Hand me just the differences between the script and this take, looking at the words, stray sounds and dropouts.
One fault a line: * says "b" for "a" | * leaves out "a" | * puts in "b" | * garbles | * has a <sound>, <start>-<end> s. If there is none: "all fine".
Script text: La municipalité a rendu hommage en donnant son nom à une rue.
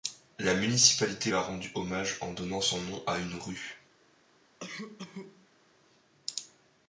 * has a cough, 4.6-5.5 s